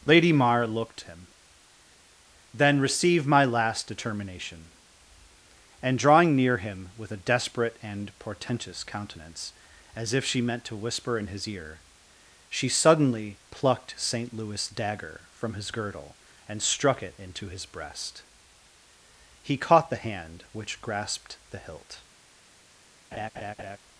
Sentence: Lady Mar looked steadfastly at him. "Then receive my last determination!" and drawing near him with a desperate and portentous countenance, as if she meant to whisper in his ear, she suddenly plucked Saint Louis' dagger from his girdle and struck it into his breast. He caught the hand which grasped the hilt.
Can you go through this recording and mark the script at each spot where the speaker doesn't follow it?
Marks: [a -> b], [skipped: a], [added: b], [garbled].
Lady Mar looked [skipped: steadfastly at] him. "Then receive my last determination!" and drawing near him with a desperate and portentous countenance, as if she meant to whisper in his ear, she suddenly plucked Saint Louis' dagger from his girdle and struck it into his breast. He caught the hand which grasped the hilt.